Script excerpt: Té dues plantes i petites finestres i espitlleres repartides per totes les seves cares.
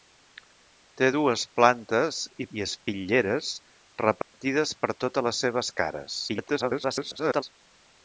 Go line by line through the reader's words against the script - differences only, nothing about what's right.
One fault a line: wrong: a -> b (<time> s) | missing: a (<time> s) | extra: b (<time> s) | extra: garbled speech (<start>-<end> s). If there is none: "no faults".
missing: petites finestres (2.5 s)
extra: garbled speech (6.3-7.4 s)